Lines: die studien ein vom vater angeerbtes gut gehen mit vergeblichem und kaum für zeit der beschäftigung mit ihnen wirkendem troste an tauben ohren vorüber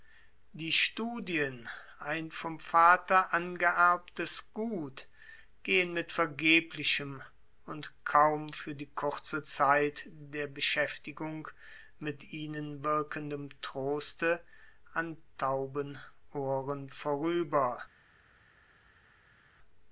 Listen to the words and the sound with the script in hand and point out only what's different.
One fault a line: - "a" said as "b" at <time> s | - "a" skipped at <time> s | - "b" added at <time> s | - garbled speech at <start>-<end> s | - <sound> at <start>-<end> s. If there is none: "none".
- "die kurze" added at 8.7 s